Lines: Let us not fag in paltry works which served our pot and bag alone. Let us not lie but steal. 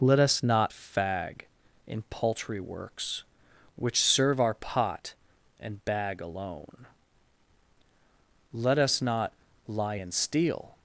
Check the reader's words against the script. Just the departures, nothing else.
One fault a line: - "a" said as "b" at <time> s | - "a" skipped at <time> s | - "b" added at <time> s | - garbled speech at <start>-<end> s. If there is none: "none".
- "served" said as "serve" at 4.0 s
- "but" said as "and" at 9.9 s